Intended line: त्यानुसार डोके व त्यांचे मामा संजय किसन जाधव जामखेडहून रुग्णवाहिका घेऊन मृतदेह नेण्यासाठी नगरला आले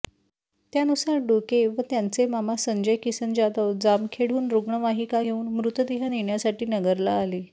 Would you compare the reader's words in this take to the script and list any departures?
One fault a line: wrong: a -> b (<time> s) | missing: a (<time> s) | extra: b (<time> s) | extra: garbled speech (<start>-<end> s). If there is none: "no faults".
no faults